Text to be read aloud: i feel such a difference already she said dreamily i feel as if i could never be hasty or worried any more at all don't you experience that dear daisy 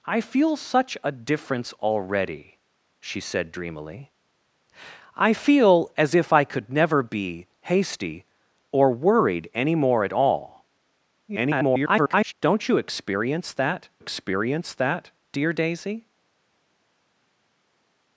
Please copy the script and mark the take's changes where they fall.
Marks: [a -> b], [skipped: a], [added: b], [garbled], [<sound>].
i feel such a difference already she said dreamily i feel as if i could never be hasty or worried any more at all [garbled] don't you experience that [added: experience that] dear daisy